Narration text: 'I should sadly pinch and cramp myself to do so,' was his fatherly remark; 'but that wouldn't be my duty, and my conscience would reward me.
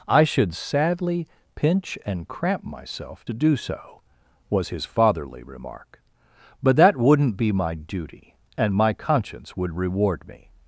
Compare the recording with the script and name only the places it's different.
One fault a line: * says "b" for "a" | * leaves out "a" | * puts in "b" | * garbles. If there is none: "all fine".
all fine